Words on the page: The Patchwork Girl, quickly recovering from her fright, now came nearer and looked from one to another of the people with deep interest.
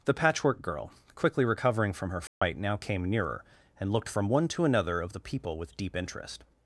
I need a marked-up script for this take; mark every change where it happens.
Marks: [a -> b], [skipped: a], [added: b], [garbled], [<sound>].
The Patchwork Girl, quickly recovering from her fright, [dropout] now came nearer and looked from one to another of the people with deep interest.